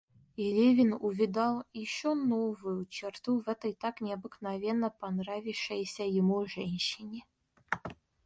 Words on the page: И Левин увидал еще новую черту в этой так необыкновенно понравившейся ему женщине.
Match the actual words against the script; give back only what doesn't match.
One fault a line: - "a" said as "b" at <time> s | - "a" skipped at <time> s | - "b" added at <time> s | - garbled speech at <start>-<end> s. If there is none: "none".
none